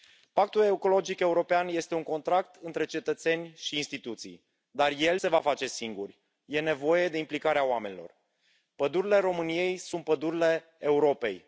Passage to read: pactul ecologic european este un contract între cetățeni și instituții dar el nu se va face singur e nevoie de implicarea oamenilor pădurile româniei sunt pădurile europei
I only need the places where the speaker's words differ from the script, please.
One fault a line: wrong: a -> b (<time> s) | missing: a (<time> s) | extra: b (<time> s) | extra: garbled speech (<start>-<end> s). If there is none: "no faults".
missing: nu (5.2 s)